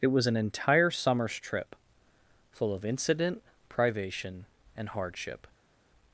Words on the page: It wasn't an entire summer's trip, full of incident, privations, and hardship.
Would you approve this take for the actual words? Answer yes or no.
no